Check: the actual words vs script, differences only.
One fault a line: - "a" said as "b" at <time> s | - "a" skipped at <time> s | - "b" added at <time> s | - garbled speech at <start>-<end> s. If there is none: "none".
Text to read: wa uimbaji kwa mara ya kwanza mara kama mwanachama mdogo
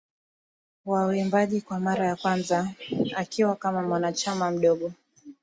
- "mara" said as "akiwa" at 3.1 s